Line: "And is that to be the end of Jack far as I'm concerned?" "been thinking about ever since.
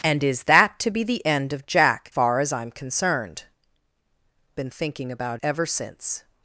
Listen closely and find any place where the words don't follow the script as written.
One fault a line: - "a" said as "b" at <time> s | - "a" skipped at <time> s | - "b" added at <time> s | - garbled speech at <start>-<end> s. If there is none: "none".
none